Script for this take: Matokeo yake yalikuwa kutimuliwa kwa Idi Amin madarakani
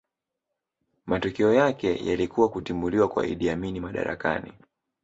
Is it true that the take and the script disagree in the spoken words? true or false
false